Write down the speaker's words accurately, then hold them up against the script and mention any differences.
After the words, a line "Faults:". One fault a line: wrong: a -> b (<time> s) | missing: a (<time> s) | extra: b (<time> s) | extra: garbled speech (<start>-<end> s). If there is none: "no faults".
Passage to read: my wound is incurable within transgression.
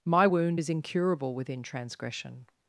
my wound is incurable within transgression.
Faults:
no faults